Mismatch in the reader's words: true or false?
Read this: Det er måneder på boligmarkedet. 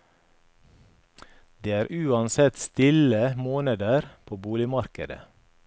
true